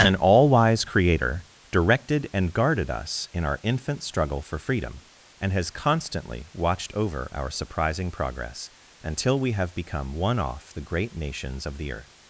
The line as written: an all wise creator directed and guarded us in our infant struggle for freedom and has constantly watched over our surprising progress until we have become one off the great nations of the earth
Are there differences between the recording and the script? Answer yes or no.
no